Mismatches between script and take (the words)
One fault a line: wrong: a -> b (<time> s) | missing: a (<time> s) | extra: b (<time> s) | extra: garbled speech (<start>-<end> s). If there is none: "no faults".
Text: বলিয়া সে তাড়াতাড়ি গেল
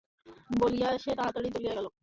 extra: চলিয়া (1.6 s)